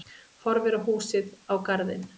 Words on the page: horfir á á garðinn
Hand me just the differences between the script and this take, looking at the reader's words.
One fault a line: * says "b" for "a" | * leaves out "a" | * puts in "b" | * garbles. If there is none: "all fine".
* puts in "húsið"